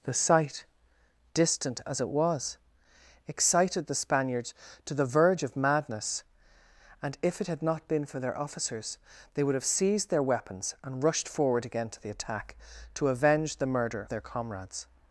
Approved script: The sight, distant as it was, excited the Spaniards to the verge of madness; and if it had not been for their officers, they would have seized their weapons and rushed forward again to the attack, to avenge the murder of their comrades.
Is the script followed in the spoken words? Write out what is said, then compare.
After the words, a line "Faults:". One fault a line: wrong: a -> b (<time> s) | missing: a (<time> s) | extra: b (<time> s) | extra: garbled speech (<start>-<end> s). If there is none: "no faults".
The sight, distant as it was, excited the Spaniards to the verge of madness; and if it had not been for their officers, they would have seized their weapons and rushed forward again to the attack, to avenge the murder their comrades.
Faults:
missing: of (14.1 s)